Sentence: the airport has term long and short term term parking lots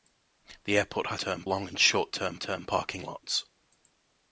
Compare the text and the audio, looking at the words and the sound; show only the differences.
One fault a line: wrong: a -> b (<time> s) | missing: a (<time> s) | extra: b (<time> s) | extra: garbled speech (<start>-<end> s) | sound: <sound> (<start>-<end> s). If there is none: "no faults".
no faults